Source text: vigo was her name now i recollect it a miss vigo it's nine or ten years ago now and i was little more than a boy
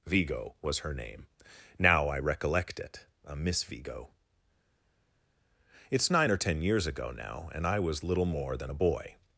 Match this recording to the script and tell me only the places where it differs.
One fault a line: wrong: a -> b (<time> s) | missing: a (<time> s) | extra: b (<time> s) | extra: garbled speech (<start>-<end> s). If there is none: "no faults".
no faults